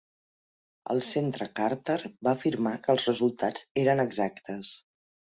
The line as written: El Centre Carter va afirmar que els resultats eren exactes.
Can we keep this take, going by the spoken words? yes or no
yes